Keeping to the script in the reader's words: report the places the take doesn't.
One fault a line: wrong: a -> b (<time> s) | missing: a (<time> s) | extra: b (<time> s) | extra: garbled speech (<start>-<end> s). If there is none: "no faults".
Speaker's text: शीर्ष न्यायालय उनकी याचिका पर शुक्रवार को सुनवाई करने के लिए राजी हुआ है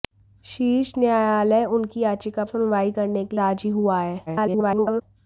missing: पर शुक्रवार को (2.4 s)
missing: लिए (3.4 s)
extra: garbled speech (4.3-5.0 s)